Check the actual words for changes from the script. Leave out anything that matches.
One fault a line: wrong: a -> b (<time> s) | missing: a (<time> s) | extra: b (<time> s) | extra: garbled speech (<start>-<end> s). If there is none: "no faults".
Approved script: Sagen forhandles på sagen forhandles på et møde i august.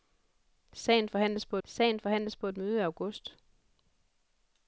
no faults